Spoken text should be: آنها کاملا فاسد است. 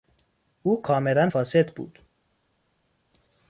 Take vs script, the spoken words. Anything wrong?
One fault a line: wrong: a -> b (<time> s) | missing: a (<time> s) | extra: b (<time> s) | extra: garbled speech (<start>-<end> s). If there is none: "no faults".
wrong: آنها -> او (0.6 s)
wrong: است -> بود (1.7 s)